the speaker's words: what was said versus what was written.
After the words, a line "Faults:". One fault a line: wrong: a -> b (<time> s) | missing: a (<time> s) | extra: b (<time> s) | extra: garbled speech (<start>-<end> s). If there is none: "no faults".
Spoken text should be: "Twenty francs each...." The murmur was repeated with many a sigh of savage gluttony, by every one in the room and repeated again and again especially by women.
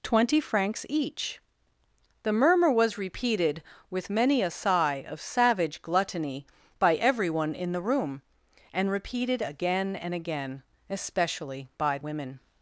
"Twenty francs each...." The murmur was repeated with many a sigh of savage gluttony, by every one in the room and repeated again and again especially by women.
Faults:
no faults